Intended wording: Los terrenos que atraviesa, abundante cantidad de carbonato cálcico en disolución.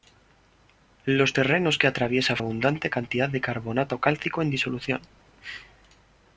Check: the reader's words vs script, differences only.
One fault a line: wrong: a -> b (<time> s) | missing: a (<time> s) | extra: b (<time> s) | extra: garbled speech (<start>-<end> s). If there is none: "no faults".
no faults